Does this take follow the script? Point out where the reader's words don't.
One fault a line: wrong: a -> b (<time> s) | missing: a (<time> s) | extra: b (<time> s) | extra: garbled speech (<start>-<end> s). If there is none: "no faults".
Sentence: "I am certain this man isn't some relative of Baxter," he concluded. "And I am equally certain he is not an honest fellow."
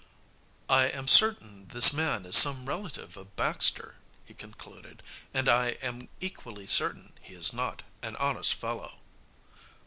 wrong: isn't -> is (2.2 s)